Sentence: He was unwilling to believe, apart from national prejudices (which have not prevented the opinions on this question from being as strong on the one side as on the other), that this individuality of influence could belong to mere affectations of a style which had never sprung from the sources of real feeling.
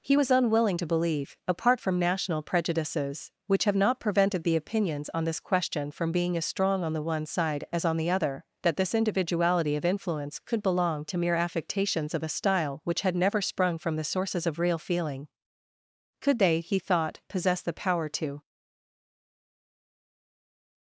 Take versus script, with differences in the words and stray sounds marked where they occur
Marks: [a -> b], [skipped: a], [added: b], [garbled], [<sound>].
He was unwilling to believe, apart from national prejudices (which have not prevented the opinions on this question from being as strong on the one side as on the other), that this individuality of influence could belong to mere affectations of a style which had never sprung from the sources of real feeling. [added: Could they he thought possess the power to]